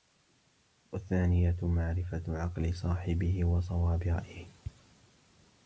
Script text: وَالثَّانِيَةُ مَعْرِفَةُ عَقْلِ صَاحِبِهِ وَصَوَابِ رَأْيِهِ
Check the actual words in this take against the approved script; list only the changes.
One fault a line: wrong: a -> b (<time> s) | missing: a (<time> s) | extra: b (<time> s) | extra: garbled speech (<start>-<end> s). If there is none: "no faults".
no faults